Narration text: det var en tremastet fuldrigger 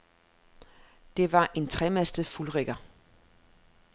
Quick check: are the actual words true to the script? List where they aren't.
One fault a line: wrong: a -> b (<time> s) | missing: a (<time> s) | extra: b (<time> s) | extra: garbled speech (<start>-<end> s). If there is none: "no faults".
no faults